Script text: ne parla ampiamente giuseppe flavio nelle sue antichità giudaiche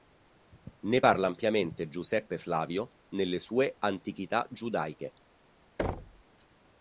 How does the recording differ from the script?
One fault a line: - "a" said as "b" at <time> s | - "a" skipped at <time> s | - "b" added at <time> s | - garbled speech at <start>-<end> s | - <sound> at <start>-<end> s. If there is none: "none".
- thud at 5.8-6.2 s